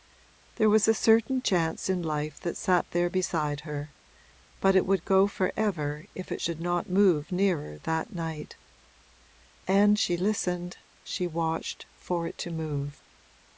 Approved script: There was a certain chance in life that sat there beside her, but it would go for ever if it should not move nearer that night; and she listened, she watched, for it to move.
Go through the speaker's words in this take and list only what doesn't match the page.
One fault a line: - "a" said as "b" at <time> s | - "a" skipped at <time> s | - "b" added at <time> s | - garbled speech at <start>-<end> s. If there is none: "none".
none